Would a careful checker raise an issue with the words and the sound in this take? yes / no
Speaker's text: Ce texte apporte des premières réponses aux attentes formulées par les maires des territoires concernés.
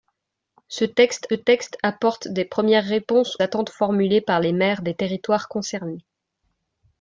yes